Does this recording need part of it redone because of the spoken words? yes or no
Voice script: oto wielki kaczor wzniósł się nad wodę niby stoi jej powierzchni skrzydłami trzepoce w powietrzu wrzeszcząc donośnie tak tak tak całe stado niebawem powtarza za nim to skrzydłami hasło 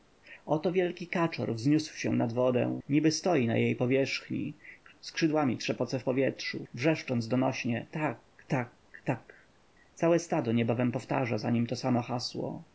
yes